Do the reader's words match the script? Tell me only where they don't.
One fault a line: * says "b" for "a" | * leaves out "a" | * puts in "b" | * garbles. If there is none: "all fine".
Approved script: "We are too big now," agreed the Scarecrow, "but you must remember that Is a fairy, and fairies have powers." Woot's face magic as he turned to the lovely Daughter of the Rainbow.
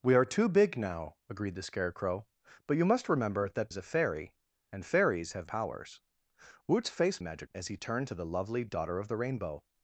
all fine